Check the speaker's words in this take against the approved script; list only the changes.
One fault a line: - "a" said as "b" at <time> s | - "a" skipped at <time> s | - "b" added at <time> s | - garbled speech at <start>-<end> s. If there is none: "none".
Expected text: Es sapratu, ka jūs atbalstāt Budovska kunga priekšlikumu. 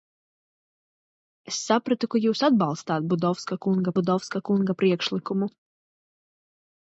- "Budovska kunga" added at 4.0 s